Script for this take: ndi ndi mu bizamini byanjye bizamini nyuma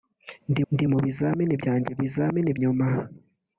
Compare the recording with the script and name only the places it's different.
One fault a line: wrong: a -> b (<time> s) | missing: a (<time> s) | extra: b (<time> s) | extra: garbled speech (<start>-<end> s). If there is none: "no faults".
no faults